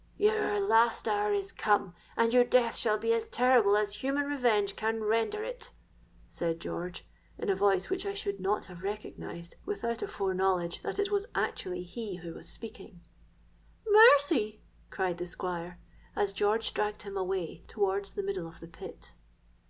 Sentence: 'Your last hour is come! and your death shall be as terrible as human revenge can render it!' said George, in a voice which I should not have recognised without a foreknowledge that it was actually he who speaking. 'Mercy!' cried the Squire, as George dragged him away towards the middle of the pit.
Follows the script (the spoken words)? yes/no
no